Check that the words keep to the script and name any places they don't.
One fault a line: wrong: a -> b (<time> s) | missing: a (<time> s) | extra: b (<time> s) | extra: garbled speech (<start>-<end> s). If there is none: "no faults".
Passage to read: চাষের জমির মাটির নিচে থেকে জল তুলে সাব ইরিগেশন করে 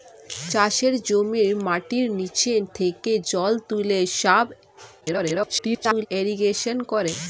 extra: garbled speech (5.0-6.1 s)